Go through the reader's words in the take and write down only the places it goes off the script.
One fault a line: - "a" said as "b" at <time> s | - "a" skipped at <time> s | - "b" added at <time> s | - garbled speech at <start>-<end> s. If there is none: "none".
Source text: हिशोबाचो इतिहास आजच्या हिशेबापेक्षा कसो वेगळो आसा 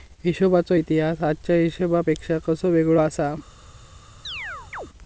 none